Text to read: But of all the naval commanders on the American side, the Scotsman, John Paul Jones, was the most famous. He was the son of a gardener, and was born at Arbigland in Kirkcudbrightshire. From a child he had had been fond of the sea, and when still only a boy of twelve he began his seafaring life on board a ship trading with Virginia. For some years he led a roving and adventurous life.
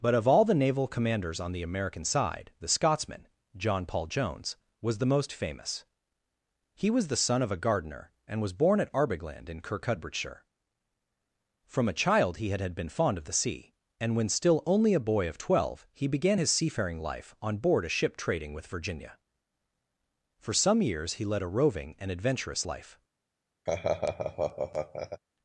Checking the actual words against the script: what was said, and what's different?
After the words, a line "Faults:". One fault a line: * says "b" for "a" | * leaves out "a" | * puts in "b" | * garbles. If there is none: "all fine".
But of all the naval commanders on the American side, the Scotsman, John Paul Jones, was the most famous. He was the son of a gardener, and was born at Arbigland in Kirkcudbrightshire. From a child he had had been fond of the sea, and when still only a boy of twelve he began his seafaring life on board a ship trading with Virginia. For some years he led a roving and adventurous life.
Faults:
all fine